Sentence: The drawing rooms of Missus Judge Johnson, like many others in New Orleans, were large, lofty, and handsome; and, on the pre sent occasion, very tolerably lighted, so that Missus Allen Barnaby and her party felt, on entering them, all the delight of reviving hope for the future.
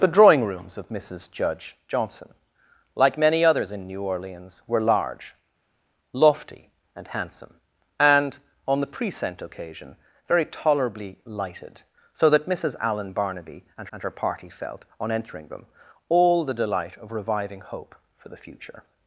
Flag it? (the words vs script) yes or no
yes